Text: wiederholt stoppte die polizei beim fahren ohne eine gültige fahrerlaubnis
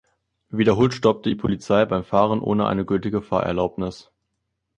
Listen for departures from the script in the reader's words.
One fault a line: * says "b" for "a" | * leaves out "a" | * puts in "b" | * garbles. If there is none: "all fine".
all fine